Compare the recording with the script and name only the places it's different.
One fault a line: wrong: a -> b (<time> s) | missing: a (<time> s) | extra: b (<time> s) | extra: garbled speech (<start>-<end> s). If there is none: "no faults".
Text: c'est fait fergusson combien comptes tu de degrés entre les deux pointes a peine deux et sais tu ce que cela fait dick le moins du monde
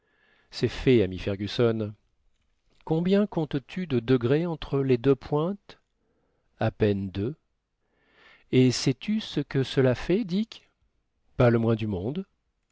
extra: ami (1.0 s)
extra: pas (11.4 s)